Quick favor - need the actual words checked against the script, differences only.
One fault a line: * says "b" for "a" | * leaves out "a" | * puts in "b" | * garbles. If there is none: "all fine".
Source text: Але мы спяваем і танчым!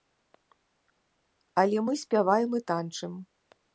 all fine